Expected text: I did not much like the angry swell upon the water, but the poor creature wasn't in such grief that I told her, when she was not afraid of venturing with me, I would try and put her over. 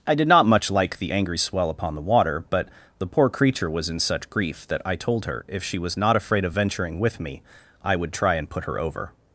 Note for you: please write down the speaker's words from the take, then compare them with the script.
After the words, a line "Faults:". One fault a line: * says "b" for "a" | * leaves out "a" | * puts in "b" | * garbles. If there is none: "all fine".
I did not much like the angry swell upon the water, but the poor creature was in such grief that I told her, if she was not afraid of venturing with me, I would try and put her over.
Faults:
* says "was" for "wasn't"
* says "if" for "when"